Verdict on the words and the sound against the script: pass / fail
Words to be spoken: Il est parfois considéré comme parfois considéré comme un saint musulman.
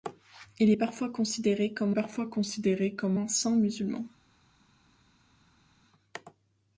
pass